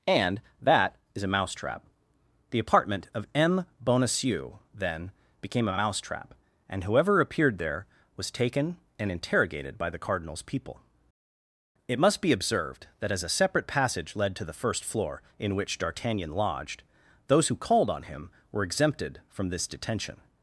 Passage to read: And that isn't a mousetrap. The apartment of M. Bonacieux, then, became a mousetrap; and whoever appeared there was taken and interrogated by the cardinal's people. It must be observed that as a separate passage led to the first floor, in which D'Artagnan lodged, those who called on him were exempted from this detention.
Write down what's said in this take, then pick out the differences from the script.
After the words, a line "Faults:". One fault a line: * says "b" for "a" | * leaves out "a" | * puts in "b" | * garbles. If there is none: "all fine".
And that is a mousetrap. The apartment of M. Bonacieux, then, became a mousetrap; and whoever appeared there was taken and interrogated by the cardinal's people. It must be observed that as a separate passage led to the first floor, in which D'Artagnan lodged, those who called on him were exempted from this detention.
Faults:
* says "is" for "isn't"